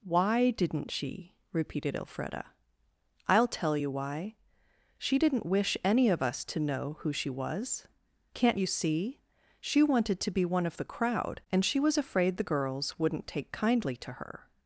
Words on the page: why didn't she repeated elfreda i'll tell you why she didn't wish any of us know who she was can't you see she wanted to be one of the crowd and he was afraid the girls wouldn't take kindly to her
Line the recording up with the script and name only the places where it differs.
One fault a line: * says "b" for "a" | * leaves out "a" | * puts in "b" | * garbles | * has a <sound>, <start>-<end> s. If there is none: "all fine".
* puts in "to"
* says "she" for "he"